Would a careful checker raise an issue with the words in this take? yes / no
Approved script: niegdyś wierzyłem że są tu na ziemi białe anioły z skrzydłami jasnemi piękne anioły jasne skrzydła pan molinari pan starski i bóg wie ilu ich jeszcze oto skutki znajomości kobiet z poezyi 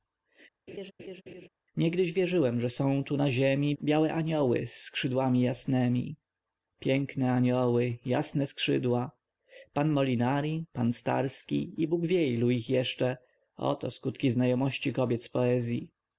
no